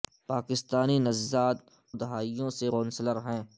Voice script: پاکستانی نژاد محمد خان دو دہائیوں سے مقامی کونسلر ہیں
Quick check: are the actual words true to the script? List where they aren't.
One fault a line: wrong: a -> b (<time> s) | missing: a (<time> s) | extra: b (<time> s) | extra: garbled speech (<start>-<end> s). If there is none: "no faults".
missing: محمد خان دو (1.6 s)
missing: مقامی (2.7 s)